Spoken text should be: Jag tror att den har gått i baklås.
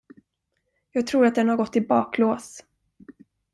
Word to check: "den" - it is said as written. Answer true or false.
true